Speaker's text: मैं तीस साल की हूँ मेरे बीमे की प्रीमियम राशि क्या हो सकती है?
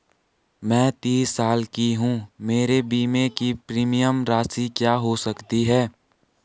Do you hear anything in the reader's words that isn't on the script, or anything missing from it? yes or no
no